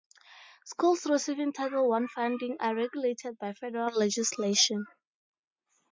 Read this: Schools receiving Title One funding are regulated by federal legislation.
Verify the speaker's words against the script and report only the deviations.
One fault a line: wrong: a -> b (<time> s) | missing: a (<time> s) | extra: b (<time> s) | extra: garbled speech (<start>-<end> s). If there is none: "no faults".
no faults